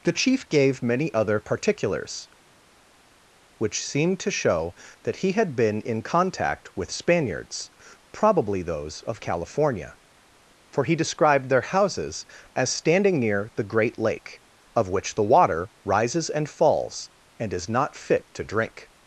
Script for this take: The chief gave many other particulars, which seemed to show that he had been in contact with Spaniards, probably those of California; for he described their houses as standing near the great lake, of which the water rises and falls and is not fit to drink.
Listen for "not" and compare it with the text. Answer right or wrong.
right